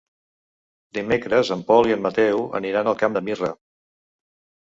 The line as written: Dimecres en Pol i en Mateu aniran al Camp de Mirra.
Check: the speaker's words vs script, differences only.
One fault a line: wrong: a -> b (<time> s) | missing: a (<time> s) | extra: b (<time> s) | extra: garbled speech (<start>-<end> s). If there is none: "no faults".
no faults